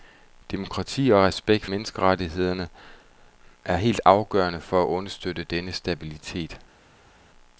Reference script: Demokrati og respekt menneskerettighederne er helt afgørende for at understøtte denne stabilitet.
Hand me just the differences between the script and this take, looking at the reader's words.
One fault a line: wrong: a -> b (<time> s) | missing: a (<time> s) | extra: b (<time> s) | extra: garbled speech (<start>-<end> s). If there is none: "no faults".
no faults